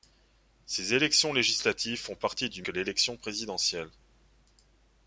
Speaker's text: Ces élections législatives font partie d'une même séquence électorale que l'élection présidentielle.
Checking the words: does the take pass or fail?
fail